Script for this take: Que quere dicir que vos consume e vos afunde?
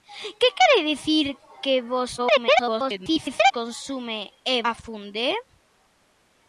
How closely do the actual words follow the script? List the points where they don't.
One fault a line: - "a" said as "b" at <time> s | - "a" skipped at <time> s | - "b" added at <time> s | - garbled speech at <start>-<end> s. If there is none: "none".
- garbled speech at 2.2-3.5 s
- "vos" skipped at 4.5 s